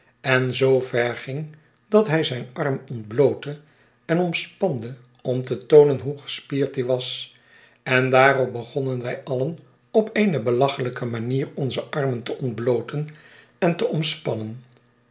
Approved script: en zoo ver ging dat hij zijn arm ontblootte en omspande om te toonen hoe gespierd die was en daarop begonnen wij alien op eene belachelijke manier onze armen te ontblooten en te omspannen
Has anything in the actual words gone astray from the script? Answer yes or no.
no